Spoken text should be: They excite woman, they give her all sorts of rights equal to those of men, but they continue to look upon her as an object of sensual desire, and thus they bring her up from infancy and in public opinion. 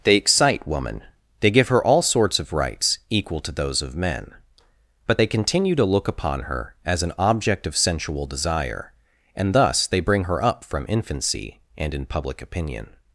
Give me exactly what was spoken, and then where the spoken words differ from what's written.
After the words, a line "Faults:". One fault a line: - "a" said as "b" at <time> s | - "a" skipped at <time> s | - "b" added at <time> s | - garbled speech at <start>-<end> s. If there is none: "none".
They excite woman, they give her all sorts of rights equal to those of men, but they continue to look upon her as an object of sensual desire, and thus they bring her up from infancy and in public opinion.
Faults:
none